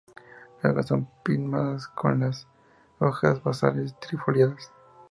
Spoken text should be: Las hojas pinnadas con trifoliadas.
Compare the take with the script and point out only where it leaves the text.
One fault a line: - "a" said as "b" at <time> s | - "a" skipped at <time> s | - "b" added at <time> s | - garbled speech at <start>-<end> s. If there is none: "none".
- "son" added at 0.9 s
- "las hojas basales" added at 2.2 s